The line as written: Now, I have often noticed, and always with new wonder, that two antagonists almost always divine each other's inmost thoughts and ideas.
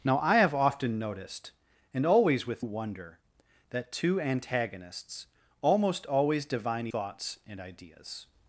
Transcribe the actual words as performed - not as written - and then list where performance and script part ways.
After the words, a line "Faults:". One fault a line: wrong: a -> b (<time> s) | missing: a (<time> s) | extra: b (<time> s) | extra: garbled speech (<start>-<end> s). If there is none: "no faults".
Now, I have often noticed, and always with wonder, that two antagonists almost always divine thoughts and ideas.
Faults:
missing: new (2.6 s)
missing: each other's inmost (6.9 s)